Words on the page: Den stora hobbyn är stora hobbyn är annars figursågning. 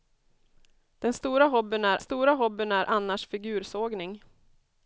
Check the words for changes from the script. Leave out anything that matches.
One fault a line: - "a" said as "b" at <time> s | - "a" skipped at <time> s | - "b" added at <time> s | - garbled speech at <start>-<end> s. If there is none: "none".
none